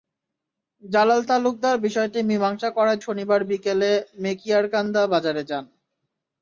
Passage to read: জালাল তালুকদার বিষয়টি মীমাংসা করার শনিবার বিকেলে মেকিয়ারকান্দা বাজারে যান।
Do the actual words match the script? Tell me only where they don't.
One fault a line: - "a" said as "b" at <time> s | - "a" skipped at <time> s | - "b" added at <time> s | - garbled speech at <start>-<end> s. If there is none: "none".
none